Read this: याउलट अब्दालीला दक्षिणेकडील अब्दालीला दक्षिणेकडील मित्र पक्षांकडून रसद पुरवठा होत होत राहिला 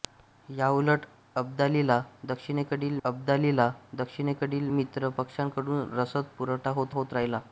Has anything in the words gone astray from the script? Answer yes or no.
no